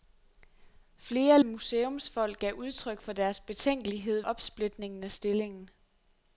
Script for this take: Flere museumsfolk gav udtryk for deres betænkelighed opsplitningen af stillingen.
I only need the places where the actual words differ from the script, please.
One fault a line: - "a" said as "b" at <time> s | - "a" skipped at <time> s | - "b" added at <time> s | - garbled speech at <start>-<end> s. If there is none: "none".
none